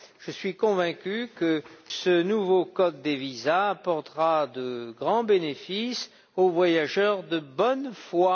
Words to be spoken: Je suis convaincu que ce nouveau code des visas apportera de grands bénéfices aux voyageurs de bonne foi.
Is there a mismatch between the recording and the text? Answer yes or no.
no